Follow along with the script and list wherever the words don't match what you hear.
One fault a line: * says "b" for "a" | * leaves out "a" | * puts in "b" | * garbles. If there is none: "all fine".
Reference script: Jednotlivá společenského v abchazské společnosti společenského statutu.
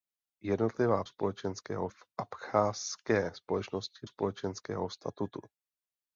all fine